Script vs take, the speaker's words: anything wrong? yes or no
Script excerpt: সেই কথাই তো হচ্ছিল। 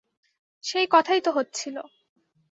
no